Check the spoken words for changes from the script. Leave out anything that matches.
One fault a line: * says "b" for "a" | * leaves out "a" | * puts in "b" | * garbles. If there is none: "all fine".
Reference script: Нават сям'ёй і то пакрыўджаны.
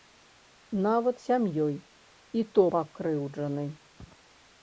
all fine